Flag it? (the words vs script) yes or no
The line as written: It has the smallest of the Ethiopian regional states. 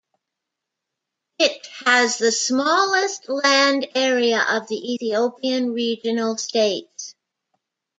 yes